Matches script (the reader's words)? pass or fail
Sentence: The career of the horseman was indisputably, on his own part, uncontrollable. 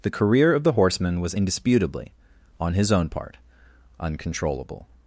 pass